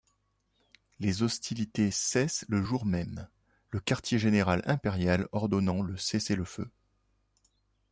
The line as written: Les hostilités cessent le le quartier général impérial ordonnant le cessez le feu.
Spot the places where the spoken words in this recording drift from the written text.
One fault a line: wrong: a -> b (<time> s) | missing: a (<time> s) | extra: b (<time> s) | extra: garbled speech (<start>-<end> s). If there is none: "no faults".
extra: jour même (2.6 s)